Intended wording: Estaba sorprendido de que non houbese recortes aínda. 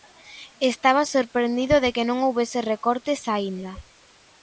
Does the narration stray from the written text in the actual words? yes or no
no